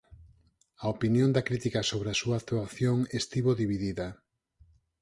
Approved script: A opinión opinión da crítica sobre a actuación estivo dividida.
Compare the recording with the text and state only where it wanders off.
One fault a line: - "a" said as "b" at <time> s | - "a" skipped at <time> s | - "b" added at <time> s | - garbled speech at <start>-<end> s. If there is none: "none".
- "opinión" skipped at 1.3 s
- "súa" added at 2.2 s